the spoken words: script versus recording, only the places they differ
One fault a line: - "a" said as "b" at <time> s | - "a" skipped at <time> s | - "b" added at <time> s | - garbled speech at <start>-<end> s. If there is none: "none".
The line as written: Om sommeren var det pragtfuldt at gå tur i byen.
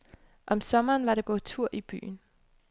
- "pragtfuldt at" skipped at 1.2 s